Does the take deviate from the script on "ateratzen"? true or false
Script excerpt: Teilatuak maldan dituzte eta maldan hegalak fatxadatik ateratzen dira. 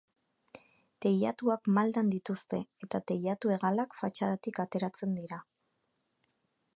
false